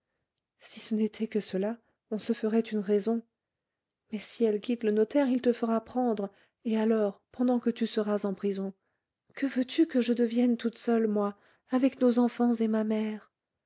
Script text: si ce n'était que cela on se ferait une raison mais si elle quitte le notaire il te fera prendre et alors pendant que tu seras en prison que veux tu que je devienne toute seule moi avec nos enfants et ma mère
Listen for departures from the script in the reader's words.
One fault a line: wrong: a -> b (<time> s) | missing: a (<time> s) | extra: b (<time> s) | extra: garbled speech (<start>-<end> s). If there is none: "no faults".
no faults